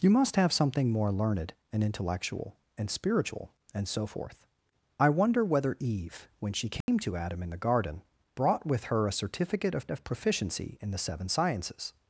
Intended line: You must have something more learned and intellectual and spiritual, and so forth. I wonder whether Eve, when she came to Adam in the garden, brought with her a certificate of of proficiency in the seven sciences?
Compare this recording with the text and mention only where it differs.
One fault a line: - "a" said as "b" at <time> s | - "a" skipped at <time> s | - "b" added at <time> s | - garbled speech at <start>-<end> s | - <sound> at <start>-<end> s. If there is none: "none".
- dropout at 6.8-6.9 s